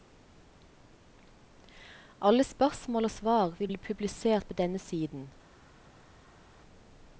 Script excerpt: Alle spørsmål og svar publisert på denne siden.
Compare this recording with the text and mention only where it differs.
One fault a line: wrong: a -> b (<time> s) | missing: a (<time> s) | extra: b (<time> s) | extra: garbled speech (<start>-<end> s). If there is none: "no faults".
extra: vil bli (3.6 s)